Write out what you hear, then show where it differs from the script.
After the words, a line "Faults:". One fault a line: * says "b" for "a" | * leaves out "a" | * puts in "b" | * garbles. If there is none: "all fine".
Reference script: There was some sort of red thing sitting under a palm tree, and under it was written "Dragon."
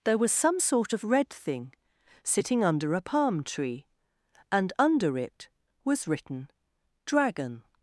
There was some sort of red thing sitting under a palm tree, and under it was written "Dragon."
Faults:
all fine